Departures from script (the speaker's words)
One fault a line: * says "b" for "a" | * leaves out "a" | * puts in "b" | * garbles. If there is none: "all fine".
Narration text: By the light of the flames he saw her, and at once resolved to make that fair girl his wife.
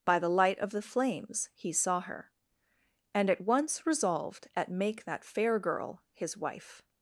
* says "at" for "to"